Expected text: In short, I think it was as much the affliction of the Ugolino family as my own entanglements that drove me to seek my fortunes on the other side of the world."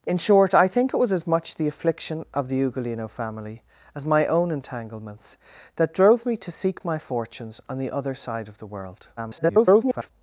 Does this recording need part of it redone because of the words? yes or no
yes